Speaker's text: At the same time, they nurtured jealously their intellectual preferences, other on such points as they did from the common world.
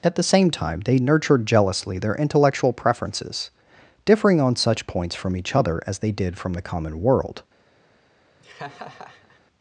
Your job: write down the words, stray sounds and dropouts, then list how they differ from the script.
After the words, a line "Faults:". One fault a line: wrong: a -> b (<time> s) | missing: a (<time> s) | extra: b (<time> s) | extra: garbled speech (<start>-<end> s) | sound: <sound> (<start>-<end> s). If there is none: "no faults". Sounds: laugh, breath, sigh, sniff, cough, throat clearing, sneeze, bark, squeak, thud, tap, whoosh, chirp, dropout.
At the same time, they nurtured jealously their intellectual preferences, differing on such points from each other as they did from the common world.
Faults:
wrong: other -> differing (4.0 s)
extra: from each other (5.1 s)
sound: laugh (8.4-9.4 s)